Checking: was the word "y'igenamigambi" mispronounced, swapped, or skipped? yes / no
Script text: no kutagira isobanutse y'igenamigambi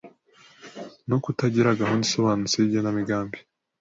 no